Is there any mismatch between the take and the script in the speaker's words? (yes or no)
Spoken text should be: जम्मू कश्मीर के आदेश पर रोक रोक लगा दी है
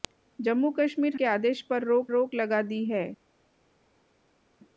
no